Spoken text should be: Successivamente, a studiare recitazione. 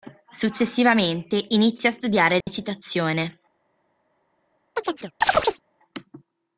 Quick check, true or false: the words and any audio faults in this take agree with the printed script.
false